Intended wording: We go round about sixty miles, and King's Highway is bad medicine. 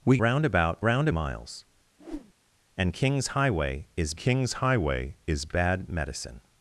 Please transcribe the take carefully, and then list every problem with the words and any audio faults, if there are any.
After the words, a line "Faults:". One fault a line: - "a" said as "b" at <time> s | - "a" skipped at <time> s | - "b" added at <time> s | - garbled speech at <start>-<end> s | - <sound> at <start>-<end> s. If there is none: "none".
We round about round miles, and King's Highway is King's Highway is bad medicine.
Faults:
- "go" skipped at 0.2 s
- "sixty" said as "round" at 0.8 s
- whoosh at 2.0-2.3 s
- "King's Highway is" added at 4.2 s